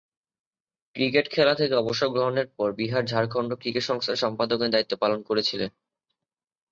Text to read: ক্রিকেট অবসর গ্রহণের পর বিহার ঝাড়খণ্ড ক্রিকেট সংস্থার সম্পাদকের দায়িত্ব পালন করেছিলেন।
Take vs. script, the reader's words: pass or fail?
fail